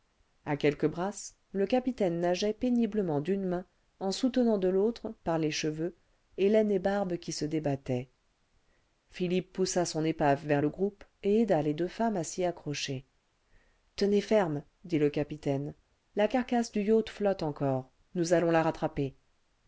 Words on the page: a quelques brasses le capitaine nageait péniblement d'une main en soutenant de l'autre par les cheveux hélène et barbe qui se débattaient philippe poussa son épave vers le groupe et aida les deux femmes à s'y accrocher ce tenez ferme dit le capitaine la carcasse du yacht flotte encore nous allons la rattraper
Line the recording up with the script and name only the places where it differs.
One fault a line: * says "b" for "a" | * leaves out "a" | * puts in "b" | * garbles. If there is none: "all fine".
all fine